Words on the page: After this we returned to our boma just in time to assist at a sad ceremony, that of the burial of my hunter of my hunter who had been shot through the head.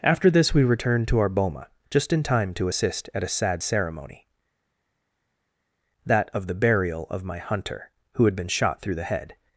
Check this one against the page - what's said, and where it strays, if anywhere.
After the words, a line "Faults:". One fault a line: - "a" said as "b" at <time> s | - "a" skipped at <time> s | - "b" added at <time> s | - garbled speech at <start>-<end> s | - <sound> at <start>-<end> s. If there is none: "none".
After this we returned to our boma just in time to assist at a sad ceremony, that of the burial of my hunter who had been shot through the head.
Faults:
- "of my hunter" skipped at 7.9 s